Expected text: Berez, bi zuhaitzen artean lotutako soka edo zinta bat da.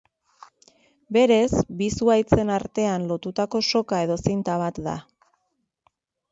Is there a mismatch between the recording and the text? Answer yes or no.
no